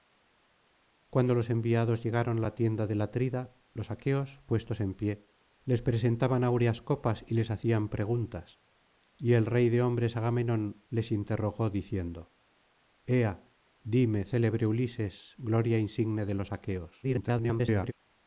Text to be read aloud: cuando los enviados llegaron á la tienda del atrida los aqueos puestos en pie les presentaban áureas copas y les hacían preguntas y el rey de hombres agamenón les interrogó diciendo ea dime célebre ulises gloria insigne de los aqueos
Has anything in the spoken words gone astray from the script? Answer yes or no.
yes